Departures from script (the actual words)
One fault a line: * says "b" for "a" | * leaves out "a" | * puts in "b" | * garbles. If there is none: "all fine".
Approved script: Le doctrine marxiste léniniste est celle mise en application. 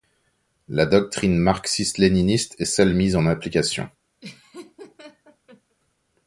* says "La" for "Le"